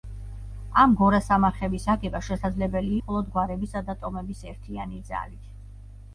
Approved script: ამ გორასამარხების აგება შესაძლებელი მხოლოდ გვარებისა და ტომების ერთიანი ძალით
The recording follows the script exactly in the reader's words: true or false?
true